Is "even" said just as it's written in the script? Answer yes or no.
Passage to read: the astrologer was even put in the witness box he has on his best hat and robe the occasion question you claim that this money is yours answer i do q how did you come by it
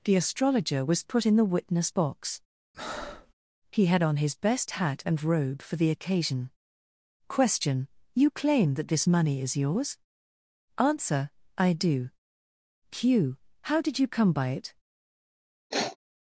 no